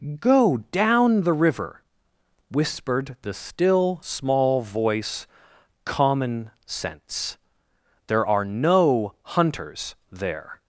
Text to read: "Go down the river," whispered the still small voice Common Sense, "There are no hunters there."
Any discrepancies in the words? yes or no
no